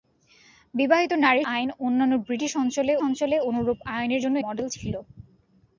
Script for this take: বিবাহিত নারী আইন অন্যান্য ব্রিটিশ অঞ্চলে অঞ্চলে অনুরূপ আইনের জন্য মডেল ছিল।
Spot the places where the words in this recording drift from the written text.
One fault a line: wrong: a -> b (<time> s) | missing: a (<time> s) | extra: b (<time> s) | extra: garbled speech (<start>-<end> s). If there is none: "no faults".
no faults